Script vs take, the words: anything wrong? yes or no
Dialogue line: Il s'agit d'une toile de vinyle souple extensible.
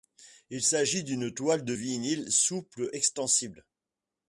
no